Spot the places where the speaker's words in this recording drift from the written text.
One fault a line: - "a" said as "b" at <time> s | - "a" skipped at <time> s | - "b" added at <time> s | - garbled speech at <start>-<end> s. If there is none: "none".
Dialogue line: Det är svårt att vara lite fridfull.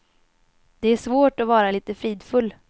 none